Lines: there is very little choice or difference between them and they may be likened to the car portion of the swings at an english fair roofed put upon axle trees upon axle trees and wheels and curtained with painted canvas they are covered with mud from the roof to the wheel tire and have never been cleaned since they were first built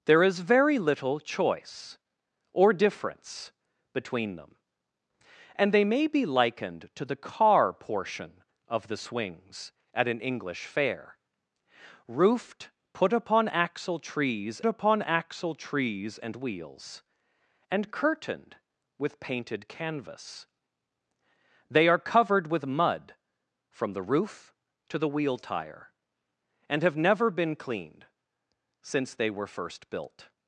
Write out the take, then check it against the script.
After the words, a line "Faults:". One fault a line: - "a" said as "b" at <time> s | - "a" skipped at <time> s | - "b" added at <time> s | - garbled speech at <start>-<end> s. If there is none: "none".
there is very little choice or difference between them and they may be likened to the car portion of the swings at an english fair roofed put upon axle trees upon axle trees and wheels and curtained with painted canvas they are covered with mud from the roof to the wheel tire and have never been cleaned since they were first built
Faults:
none